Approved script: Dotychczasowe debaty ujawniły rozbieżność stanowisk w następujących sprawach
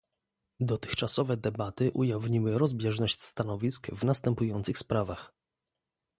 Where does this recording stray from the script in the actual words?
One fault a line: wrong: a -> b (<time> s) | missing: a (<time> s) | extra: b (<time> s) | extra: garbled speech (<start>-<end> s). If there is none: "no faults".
no faults